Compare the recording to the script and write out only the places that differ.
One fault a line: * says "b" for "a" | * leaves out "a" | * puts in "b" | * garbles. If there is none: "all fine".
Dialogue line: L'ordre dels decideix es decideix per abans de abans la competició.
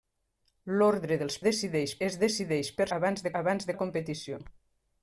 all fine